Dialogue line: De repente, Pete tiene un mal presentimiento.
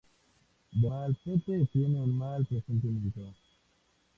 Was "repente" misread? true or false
true